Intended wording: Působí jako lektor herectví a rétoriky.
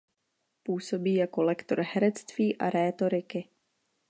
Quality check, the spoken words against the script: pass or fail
pass